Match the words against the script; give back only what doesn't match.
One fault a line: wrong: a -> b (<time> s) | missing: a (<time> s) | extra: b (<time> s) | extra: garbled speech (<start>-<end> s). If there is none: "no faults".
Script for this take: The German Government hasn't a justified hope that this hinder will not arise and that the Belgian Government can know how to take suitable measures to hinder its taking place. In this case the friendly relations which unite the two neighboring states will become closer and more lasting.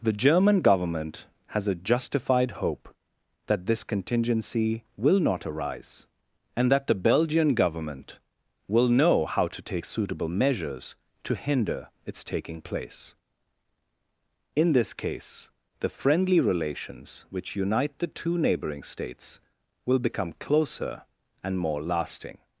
wrong: hasn't -> has (1.5 s)
wrong: hinder -> contingency (3.8 s)
wrong: can -> will (8.7 s)